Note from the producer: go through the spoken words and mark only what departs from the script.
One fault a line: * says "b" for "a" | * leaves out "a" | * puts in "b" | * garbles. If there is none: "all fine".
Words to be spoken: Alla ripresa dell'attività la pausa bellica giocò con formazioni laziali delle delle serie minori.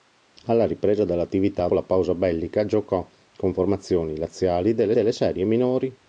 all fine